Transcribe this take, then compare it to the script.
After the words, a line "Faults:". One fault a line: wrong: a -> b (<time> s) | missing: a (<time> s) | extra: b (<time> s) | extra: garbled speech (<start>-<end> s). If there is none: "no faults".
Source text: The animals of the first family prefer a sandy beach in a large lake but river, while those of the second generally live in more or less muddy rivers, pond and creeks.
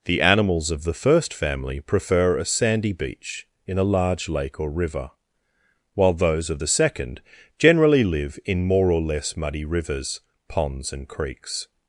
The animals of the first family prefer a sandy beach in a large lake or river, while those of the second generally live in more or less muddy rivers, ponds and creeks.
Faults:
wrong: but -> or (4.6 s)
wrong: pond -> ponds (10.5 s)